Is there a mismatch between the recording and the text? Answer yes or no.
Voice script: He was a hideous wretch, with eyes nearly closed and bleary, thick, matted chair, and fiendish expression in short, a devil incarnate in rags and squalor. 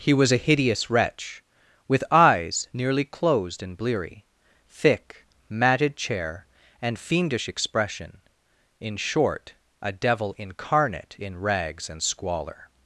no